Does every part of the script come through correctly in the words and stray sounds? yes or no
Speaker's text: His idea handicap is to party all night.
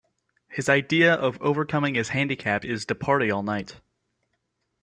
no